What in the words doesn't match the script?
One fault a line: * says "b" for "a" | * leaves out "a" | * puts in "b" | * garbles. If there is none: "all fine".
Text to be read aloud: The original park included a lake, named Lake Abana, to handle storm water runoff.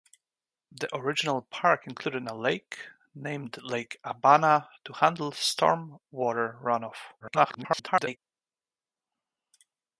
* garbles